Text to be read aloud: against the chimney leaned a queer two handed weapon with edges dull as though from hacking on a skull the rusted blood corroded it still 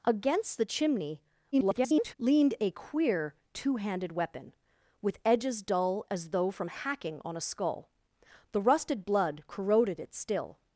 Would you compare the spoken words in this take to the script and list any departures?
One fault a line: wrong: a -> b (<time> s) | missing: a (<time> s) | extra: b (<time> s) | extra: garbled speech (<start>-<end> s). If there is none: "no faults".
extra: garbled speech (1.5-2.1 s)